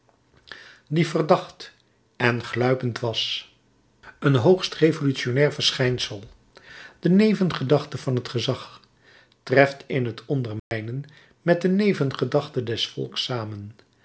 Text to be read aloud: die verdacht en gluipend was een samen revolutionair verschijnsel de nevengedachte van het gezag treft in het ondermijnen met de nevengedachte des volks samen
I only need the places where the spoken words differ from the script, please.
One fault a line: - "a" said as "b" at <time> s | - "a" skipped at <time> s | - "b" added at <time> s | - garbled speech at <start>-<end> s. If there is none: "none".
- "samen" said as "hoogst" at 4.3 s